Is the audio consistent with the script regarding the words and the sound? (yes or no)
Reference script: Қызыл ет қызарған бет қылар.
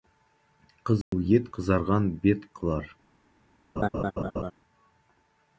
no